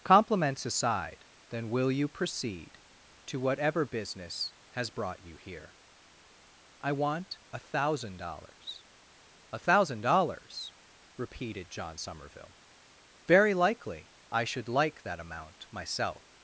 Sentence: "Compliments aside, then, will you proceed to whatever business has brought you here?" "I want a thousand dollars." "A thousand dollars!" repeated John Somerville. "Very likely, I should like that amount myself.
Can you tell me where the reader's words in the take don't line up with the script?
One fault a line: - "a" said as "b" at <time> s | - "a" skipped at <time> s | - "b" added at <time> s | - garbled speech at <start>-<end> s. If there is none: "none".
none